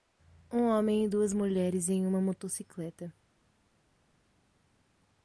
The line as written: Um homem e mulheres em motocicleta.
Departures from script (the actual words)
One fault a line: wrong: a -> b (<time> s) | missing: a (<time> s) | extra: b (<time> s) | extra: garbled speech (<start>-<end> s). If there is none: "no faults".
extra: duas (1.1 s)
extra: uma (2.1 s)